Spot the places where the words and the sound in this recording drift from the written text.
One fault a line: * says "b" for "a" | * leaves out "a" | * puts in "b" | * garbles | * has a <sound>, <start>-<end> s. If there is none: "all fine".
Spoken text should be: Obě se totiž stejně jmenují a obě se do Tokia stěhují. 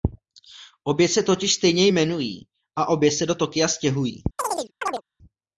* has a chirp, 4.4-5.0 s